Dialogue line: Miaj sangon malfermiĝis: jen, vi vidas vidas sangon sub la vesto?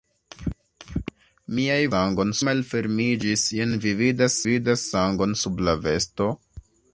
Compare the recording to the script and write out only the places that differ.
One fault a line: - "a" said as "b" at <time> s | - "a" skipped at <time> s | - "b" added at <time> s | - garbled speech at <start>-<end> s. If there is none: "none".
none